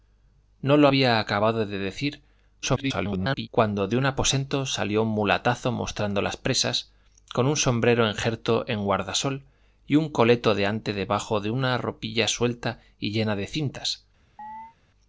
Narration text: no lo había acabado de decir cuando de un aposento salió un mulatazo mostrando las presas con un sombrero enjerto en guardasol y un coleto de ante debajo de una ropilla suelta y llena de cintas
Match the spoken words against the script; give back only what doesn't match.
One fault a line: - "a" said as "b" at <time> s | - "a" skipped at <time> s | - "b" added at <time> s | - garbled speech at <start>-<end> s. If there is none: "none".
- garbled speech at 2.6-3.5 s